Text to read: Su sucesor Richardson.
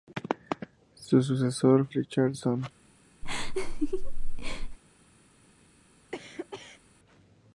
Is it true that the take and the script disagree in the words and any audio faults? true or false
true